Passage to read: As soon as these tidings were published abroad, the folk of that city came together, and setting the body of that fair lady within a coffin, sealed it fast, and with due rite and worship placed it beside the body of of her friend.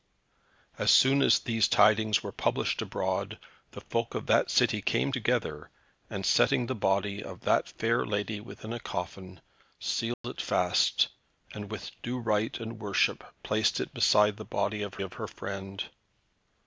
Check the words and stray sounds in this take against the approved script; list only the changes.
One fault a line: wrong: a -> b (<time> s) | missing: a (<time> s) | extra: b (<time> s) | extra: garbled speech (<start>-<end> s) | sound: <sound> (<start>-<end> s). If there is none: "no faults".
sound: dropout (10.1-10.2 s)